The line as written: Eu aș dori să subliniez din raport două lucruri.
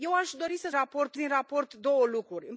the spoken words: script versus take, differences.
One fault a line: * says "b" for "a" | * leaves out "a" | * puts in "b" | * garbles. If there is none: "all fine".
* says "raport" for "subliniez"